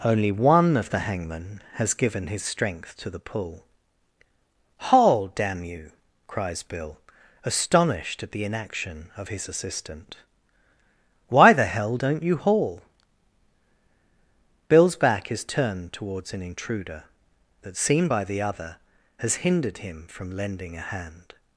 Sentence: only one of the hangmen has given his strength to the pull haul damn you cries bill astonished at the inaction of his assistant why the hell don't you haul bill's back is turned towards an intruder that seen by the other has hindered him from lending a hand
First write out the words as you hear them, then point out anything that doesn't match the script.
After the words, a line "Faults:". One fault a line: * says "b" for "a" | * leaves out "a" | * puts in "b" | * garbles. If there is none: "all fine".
only one of the hangmen has given his strength to the pull haul damn you cries bill astonished at the inaction of his assistant why the hell don't you haul bill's back is turned towards an intruder that seen by the other has hindered him from lending a hand
Faults:
all fine